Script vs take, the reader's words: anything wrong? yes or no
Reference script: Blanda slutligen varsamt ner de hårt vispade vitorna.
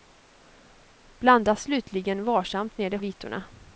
yes